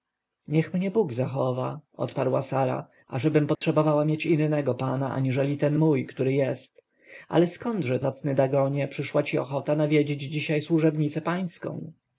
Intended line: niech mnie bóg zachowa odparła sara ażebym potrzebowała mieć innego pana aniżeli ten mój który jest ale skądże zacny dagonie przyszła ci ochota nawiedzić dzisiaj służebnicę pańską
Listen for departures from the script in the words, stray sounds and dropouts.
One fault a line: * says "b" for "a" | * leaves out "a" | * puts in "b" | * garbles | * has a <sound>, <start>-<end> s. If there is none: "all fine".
* has a dropout, 3.5-3.6 s